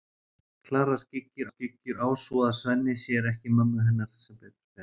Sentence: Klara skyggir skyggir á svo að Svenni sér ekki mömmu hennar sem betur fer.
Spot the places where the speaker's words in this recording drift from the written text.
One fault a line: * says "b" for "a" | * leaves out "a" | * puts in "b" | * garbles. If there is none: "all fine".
all fine